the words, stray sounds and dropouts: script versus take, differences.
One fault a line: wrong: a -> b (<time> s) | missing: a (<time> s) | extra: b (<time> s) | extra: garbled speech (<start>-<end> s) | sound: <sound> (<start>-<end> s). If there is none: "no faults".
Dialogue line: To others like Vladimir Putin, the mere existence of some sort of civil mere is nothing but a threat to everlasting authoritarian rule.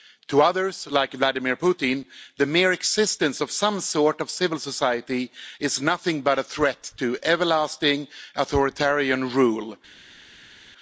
wrong: mere -> society (4.6 s)